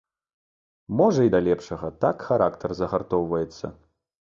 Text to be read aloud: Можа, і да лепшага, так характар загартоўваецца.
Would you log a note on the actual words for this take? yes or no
no